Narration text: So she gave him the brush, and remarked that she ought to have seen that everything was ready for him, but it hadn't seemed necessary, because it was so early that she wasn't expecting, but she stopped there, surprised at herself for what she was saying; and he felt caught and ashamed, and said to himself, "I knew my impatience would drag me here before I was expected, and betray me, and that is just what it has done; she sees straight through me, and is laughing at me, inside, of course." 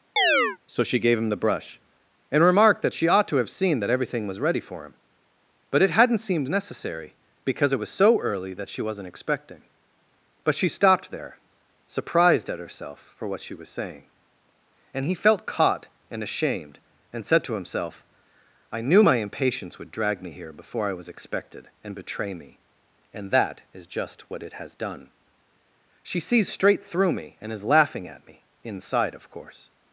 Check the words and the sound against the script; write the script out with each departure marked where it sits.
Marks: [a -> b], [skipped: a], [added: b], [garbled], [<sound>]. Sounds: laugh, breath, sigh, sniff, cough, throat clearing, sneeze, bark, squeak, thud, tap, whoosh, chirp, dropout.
[chirp] So she gave him the brush, and remarked that she ought to have seen that everything was ready for him, but it hadn't seemed necessary, because it was so early that she wasn't expecting, but she stopped there, surprised at herself for what she was saying; and he felt caught and ashamed, and said to himself, "I knew my impatience would drag me here before I was expected, and betray me, and that is just what it has done; she sees straight through me, and is laughing at me, inside, of course."